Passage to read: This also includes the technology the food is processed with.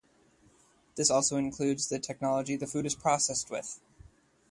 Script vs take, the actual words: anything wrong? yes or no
no